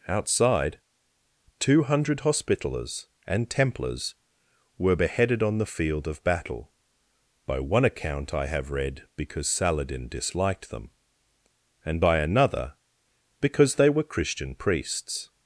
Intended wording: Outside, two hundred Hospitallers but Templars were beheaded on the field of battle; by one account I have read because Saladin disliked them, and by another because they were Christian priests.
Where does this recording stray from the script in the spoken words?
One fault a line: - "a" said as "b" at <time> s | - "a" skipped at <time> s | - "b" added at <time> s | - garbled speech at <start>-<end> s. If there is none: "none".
- "but" said as "and" at 3.3 s